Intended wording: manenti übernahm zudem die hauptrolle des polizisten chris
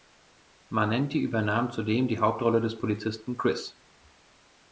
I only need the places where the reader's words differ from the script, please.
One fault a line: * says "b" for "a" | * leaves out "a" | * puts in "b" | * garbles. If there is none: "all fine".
all fine